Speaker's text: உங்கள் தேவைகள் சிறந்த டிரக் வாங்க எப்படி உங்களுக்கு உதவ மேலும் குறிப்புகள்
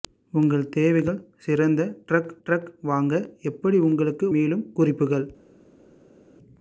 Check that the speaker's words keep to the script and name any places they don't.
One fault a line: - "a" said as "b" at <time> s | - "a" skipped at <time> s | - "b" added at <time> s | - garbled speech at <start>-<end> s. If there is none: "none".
- "டிரக்" added at 2.4 s
- "உதவ" skipped at 4.3 s